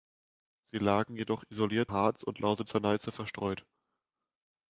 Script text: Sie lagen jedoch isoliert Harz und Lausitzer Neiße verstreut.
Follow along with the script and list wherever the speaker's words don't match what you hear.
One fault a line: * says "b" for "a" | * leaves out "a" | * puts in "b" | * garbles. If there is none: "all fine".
all fine